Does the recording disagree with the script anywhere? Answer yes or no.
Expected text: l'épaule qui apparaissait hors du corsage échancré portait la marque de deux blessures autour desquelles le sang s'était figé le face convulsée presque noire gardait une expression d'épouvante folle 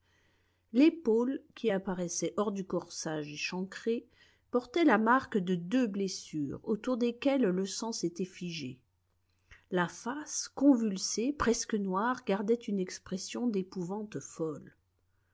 yes